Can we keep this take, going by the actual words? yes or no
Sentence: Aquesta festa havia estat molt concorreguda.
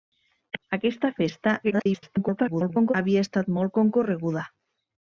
no